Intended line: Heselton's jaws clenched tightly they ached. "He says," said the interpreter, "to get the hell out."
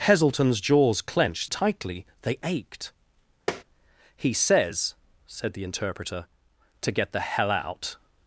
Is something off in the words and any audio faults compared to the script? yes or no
yes